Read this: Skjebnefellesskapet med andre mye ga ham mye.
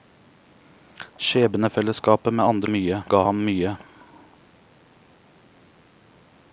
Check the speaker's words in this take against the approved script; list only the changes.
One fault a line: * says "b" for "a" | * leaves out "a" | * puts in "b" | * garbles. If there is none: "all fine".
all fine